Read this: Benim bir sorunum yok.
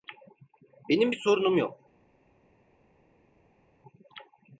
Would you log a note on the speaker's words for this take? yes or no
no